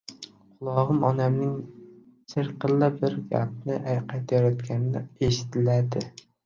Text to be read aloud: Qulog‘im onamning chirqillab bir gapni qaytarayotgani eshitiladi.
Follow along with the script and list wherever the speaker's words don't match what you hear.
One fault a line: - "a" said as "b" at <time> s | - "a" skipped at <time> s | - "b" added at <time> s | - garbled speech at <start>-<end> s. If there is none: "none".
none